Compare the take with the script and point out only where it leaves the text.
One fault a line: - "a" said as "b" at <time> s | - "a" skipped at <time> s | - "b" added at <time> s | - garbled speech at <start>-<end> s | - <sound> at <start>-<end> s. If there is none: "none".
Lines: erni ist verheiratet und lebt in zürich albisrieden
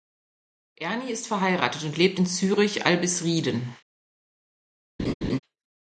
- laugh at 5.0-5.4 s